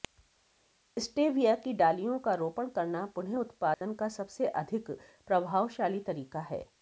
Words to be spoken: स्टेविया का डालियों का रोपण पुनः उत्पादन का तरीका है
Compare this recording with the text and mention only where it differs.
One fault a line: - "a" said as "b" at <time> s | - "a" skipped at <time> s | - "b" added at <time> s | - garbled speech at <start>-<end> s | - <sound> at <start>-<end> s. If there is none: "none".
- "का" said as "की" at 1.6 s
- "करना" added at 2.7 s
- dropout at 3.7-3.8 s
- "सबसे अधिक प्रभावशाली" added at 4.1 s